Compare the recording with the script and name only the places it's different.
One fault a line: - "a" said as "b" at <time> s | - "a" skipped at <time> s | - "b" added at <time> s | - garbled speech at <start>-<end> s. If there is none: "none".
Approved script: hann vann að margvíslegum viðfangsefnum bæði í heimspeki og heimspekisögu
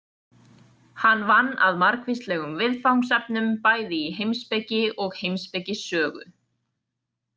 none